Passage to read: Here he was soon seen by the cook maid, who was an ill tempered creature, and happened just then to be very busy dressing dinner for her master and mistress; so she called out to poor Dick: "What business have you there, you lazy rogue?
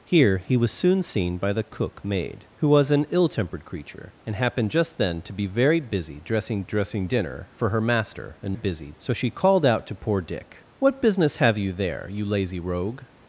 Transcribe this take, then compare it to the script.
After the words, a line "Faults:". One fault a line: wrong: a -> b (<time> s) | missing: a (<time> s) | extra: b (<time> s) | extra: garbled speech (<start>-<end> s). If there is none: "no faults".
Here he was soon seen by the cook maid, who was an ill tempered creature, and happened just then to be very busy dressing dressing dinner for her master and busy; so she called out to poor Dick: "What business have you there, you lazy rogue?
Faults:
extra: dressing (6.6 s)
wrong: mistress -> busy (8.5 s)